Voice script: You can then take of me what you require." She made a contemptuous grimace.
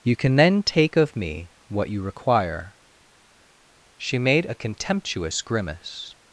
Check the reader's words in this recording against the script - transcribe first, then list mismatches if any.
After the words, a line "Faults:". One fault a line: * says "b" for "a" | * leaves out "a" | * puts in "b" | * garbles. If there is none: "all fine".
You can then take of me what you require." She made a contemptuous grimace.
Faults:
all fine